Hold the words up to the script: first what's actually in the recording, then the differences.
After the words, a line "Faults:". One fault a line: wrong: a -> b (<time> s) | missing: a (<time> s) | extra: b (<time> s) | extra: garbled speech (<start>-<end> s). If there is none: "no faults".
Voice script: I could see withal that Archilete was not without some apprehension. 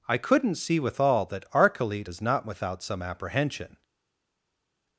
I couldn't see withal that Archilete is not without some apprehension.
Faults:
wrong: could -> couldn't (0.2 s)
wrong: was -> is (2.1 s)